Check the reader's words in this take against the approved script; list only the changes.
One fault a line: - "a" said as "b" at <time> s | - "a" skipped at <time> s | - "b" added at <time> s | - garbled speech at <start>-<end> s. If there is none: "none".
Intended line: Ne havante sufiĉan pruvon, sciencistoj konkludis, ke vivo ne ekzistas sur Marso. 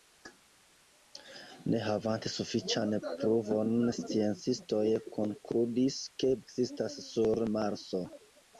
- "vivo ne" skipped at 6.3 s